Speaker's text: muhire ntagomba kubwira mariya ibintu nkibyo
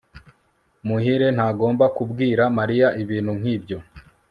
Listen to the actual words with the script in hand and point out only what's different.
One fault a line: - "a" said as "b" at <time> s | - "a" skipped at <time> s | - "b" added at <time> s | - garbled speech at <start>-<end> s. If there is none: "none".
none